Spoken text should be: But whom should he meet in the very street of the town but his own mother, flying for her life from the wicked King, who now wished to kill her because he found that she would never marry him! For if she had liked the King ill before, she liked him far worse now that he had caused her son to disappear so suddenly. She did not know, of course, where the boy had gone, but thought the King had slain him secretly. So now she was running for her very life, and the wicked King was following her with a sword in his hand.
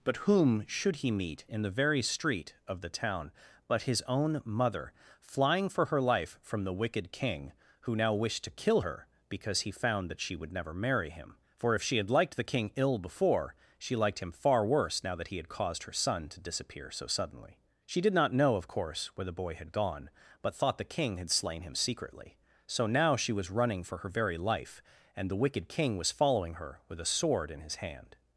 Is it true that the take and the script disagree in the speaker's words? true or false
false